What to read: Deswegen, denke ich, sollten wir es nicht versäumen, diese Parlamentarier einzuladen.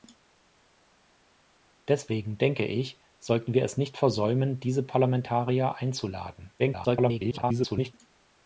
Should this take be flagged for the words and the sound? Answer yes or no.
yes